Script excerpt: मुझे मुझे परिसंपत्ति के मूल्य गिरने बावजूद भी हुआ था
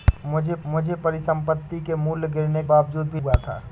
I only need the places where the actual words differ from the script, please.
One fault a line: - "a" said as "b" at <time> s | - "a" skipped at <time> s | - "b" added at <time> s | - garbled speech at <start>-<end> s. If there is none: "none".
none